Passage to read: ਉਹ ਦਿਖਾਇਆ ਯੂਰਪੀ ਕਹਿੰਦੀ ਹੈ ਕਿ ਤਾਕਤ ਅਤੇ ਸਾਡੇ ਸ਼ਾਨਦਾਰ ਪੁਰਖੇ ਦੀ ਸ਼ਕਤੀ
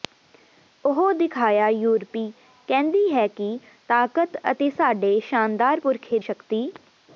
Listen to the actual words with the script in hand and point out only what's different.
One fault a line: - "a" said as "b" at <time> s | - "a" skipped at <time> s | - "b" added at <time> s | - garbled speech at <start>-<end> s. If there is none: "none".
- "ਦੀ" skipped at 6.2 s